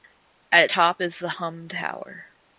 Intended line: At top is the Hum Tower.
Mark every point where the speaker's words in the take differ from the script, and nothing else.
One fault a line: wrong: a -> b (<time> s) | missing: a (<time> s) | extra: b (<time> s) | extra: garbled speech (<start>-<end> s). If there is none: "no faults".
no faults